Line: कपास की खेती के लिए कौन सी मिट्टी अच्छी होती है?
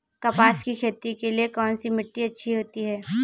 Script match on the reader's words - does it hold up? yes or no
yes